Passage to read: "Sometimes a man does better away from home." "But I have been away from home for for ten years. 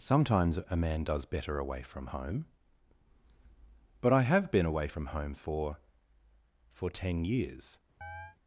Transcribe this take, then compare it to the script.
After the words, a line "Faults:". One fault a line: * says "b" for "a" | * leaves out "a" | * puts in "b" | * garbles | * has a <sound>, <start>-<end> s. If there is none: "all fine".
"Sometimes a man does better away from home." "But I have been away from home for for ten years.
Faults:
* has a chirp, 8.0-8.4 s